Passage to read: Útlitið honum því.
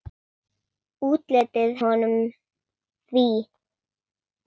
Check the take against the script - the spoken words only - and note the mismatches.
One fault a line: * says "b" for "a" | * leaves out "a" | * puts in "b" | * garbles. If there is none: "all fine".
all fine